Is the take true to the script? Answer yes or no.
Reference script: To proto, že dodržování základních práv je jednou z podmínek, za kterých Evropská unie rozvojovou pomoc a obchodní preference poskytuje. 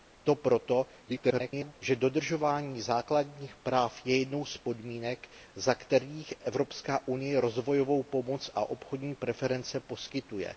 no